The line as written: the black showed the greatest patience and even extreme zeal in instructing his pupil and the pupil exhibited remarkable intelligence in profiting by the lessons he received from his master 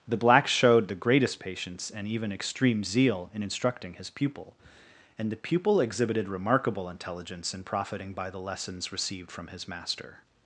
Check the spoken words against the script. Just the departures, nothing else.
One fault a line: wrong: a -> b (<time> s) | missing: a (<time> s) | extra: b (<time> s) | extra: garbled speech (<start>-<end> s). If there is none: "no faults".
missing: he (8.9 s)